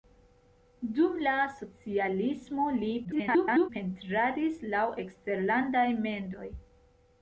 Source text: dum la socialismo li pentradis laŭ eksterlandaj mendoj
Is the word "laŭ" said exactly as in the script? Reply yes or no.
yes